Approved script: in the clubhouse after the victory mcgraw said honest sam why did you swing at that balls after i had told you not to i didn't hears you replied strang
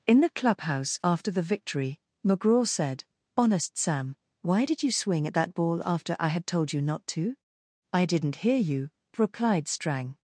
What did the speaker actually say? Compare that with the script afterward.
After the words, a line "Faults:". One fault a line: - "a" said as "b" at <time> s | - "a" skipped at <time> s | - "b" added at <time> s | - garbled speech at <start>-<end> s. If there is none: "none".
in the clubhouse after the victory mcgraw said honest sam why did you swing at that ball after i had told you not to i didn't hear you replied strang
Faults:
- "balls" said as "ball" at 5.5 s
- "hears" said as "hear" at 8.4 s